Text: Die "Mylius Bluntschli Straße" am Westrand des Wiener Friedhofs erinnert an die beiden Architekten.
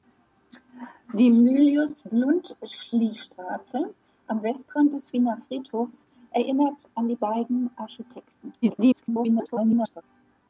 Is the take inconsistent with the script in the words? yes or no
yes